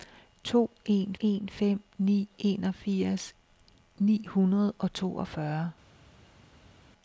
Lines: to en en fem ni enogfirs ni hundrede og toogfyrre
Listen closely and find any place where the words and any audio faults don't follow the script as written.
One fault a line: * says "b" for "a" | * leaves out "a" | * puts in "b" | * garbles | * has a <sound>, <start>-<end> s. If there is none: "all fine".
all fine